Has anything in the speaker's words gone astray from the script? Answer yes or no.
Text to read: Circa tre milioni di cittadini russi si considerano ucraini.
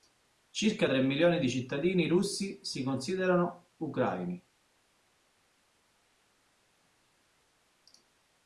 no